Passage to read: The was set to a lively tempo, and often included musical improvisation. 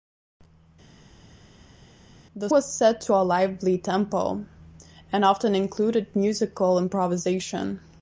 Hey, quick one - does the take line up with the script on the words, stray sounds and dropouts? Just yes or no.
yes